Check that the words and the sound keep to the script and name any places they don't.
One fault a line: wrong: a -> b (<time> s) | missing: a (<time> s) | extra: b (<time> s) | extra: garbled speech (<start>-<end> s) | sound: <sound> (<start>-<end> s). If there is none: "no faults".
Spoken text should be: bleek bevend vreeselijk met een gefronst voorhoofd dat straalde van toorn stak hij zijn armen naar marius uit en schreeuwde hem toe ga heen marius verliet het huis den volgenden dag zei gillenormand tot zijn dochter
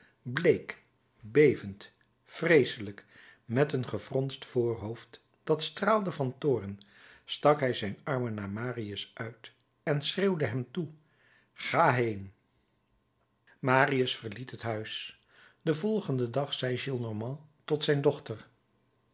no faults